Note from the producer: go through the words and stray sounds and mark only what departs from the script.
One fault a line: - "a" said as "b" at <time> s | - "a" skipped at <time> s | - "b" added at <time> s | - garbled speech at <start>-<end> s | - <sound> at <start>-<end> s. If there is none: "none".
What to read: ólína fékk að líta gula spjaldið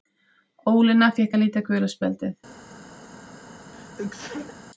- sneeze at 3.7-4.6 s